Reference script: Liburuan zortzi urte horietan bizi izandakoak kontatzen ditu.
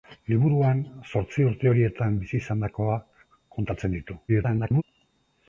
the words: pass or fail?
fail